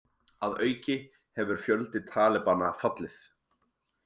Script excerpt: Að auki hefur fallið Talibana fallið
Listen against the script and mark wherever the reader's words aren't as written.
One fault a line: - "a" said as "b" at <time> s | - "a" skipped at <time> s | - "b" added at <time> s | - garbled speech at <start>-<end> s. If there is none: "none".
- "fallið" said as "fjöldi" at 1.6 s